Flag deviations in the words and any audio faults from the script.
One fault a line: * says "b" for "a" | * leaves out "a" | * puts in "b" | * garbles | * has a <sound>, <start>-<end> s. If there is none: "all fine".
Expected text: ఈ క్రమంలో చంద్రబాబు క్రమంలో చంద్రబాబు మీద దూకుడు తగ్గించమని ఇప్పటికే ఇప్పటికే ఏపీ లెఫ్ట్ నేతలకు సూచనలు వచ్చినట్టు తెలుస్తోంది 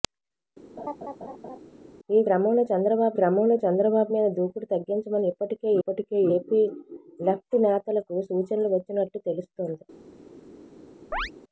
* has a laugh, 0.8-1.6 s
* has a chirp, 11.1-11.3 s